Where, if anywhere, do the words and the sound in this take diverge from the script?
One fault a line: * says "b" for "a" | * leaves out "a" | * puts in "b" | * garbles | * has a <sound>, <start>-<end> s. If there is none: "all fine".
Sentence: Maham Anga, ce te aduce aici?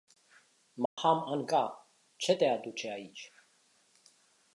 * has a dropout, 0.9-1.0 s